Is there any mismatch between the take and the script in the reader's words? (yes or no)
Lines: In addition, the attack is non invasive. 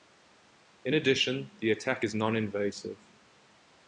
no